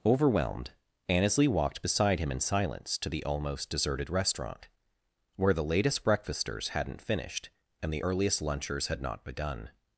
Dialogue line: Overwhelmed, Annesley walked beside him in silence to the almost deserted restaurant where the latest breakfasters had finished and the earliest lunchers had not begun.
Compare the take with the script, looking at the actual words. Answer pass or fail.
fail